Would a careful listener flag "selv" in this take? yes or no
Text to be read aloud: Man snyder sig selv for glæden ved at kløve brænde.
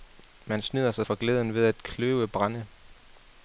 yes